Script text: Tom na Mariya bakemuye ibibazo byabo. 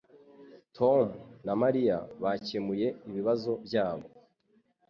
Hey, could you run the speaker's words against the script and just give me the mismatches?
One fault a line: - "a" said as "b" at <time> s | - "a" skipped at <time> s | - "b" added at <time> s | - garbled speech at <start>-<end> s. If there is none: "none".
none